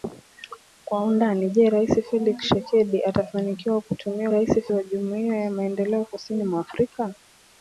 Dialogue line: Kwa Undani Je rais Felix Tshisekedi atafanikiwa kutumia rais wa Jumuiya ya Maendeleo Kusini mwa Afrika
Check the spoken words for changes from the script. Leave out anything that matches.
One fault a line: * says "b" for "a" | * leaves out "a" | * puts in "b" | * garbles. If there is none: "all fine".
all fine